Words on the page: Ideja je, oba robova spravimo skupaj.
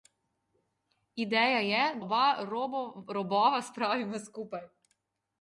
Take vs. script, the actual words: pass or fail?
pass